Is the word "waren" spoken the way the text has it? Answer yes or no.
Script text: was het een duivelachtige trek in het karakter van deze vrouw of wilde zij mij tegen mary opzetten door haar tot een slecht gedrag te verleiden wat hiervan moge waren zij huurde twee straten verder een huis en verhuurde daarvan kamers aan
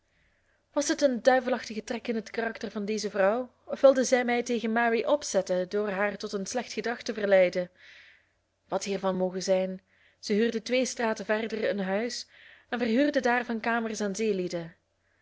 no